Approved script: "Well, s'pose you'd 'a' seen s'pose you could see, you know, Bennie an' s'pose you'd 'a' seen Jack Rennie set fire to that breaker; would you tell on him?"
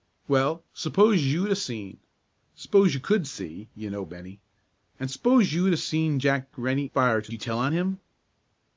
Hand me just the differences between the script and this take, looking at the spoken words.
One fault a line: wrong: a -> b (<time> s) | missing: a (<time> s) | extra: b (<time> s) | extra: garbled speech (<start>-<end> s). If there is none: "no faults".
missing: set (6.9 s)
missing: that breaker would (7.3 s)